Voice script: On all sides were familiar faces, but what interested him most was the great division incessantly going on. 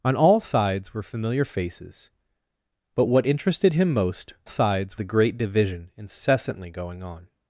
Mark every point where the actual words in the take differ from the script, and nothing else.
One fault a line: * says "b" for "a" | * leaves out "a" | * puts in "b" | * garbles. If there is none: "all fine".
* says "sides" for "was"